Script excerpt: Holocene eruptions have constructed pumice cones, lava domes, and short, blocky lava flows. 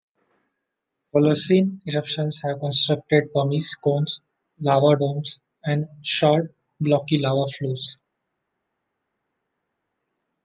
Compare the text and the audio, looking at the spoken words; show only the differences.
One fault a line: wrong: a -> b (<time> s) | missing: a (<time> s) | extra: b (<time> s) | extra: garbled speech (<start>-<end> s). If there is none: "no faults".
no faults